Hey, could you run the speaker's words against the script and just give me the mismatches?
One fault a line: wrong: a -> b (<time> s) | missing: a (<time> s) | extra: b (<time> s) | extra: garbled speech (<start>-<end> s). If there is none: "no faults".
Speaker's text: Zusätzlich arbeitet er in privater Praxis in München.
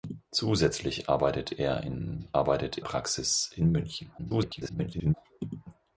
wrong: privater -> arbeitet (2.3 s)
extra: garbled speech (4.2-5.1 s)